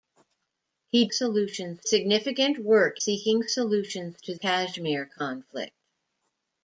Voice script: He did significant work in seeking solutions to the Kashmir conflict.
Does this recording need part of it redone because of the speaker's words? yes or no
yes